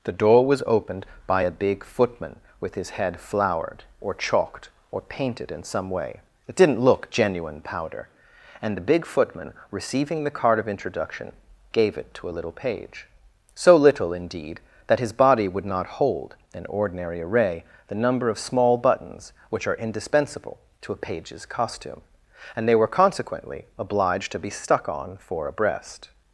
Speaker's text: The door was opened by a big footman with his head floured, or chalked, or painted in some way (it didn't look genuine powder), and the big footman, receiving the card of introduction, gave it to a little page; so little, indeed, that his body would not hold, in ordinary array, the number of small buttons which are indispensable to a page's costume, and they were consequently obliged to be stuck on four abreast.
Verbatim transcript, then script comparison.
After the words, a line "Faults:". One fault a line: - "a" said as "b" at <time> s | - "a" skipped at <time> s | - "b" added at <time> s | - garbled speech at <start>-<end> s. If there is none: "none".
The door was opened by a big footman with his head floured, or chalked, or painted in some way (it didn't look genuine powder), and the big footman, receiving the card of introduction, gave it to a little page; so little, indeed, that his body would not hold, in ordinary array, the number of small buttons which are indispensable to a page's costume, and they were consequently obliged to be stuck on four abreast.
Faults:
none